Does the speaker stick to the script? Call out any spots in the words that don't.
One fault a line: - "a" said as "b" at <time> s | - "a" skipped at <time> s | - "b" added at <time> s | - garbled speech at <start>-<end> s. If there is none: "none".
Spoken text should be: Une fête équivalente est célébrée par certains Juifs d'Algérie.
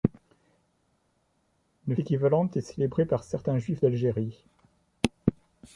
- "fête" skipped at 1.9 s